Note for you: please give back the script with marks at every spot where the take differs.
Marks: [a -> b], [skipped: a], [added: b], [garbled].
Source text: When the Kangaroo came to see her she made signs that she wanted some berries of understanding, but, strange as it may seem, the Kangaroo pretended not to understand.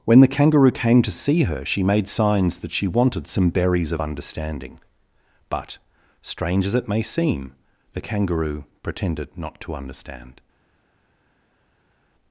When the Kangaroo came to see her she made signs that she wanted some berries of understanding, but, strange as it may seem, the Kangaroo pretended not to understand.